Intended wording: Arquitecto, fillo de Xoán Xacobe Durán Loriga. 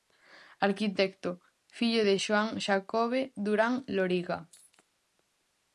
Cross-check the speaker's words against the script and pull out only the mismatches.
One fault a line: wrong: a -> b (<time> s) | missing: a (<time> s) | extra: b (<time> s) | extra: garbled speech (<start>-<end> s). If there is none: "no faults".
no faults